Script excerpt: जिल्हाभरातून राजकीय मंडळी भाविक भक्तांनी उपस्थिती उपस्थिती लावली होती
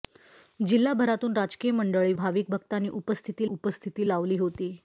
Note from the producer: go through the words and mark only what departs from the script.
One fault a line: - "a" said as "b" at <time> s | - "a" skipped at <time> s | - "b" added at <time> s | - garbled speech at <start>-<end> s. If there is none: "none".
none